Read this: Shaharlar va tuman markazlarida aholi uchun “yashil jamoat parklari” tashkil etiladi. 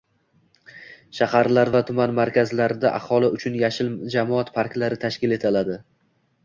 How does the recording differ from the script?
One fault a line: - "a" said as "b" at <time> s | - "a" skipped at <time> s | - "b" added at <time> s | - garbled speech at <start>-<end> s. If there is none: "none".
none